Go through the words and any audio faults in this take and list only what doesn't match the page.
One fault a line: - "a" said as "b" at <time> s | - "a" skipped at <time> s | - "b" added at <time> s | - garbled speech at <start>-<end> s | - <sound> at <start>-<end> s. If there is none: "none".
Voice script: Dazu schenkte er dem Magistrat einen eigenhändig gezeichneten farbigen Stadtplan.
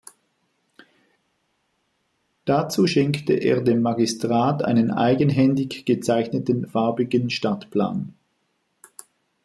none